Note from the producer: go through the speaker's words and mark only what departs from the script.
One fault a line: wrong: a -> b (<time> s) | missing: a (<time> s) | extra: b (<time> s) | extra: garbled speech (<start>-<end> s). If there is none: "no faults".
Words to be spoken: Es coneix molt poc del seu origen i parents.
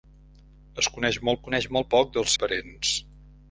extra: coneix molt (1.5 s)
missing: seu origen (2.3 s)